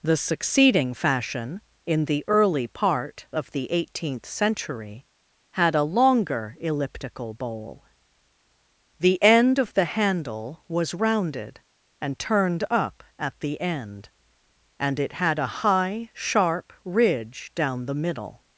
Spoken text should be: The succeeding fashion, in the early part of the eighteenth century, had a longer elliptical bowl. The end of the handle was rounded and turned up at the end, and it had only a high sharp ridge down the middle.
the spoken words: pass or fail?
fail